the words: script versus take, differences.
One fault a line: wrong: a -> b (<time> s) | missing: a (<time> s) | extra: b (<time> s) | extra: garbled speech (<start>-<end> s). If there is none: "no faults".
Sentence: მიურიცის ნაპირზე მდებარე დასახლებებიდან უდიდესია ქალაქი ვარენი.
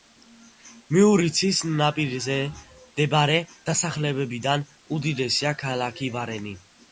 no faults